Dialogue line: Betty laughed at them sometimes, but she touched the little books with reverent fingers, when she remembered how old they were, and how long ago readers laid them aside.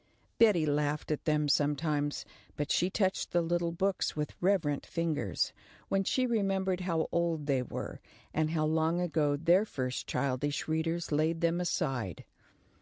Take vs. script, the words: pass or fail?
fail